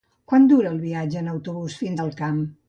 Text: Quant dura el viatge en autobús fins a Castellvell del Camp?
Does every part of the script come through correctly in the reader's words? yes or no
no